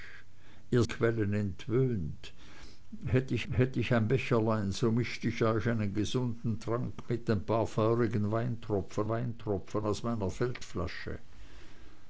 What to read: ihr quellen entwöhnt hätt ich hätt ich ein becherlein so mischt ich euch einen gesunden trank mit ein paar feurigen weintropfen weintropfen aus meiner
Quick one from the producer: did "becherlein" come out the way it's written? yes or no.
yes